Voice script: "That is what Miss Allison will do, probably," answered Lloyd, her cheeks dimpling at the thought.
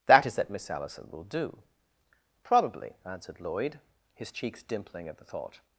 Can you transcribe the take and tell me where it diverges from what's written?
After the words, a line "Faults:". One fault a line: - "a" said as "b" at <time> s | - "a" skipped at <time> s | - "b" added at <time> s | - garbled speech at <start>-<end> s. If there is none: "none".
"That is that Miss Allison will do, probably," answered Lloyd, his cheeks dimpling at the thought.
Faults:
- "what" said as "that" at 0.3 s
- "her" said as "his" at 4.1 s